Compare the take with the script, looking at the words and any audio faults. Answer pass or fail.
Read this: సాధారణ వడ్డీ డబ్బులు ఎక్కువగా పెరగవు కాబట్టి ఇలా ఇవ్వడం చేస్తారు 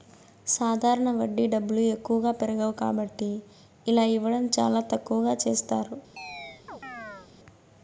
fail